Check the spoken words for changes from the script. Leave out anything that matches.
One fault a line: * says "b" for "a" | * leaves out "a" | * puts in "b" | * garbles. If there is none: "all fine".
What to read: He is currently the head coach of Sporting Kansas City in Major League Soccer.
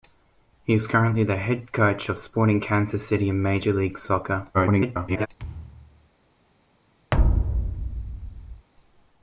* garbles